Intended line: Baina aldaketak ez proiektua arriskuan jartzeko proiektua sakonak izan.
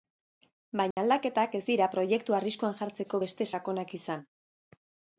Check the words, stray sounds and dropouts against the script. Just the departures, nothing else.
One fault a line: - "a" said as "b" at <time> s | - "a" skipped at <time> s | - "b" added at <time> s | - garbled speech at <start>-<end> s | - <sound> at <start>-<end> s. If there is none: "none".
- dropout at 0.9-1.0 s
- "dira" added at 1.7 s
- "proiektua" said as "beste" at 3.2 s